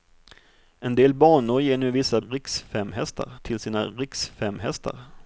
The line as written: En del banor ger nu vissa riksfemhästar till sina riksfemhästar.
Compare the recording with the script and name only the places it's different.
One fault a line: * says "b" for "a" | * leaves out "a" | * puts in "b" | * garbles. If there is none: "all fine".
all fine